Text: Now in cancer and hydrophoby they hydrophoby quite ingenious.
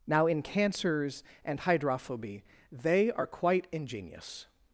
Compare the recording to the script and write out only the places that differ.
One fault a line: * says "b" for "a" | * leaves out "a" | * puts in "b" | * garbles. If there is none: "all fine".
* says "cancers" for "cancer"
* says "are" for "hydrophoby"